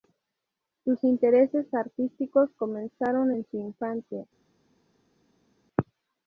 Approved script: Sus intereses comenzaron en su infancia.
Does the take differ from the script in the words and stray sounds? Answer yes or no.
yes